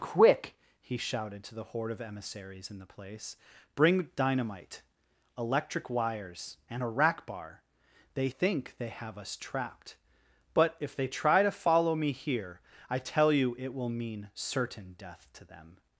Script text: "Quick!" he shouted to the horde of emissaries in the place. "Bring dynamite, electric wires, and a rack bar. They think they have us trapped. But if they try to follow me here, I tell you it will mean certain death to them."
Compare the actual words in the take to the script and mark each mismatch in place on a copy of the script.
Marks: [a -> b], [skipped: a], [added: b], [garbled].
"Quick!" he shouted to the horde of emissaries in the place. "Bring dynamite, electric wires, and a rack bar. They think they have us trapped. But if they try to follow me here, I tell you it will mean certain death to them."